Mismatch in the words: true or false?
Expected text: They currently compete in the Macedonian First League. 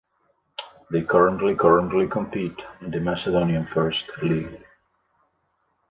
true